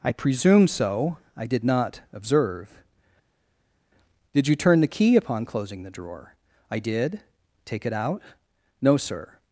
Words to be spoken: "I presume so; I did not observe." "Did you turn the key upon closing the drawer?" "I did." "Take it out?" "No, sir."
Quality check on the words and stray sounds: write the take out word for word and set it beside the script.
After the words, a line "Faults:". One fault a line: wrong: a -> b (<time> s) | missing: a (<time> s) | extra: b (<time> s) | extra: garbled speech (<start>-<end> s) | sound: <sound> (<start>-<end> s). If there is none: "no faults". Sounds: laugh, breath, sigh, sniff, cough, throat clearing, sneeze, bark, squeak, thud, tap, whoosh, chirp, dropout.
"I presume so; I did not observe." "Did you turn the key upon closing the drawer?" "I did." "Take it out?" "No, sir."
Faults:
no faults